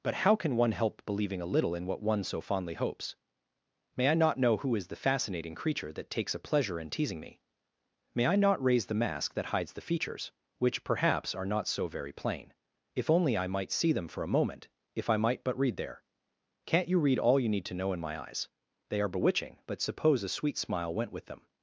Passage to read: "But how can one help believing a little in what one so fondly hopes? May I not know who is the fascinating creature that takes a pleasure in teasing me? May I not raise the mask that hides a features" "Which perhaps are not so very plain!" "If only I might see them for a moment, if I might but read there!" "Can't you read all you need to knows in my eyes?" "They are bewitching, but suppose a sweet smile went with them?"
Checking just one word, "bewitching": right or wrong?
right